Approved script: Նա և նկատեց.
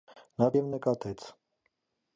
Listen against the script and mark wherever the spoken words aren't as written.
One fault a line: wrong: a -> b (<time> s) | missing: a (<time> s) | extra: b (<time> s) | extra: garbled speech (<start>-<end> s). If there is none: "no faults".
no faults